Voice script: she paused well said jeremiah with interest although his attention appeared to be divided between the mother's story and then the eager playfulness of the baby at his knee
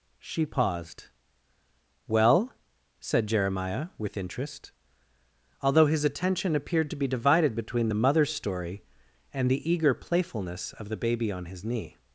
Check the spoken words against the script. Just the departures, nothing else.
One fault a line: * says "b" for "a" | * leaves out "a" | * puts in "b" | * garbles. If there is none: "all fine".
* leaves out "then"
* says "on" for "at"